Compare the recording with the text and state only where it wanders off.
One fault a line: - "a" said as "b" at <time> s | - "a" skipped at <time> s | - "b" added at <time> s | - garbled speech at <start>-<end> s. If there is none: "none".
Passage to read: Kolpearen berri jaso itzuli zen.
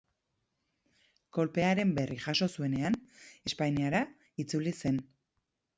- "zuenean Espainiara" added at 2.6 s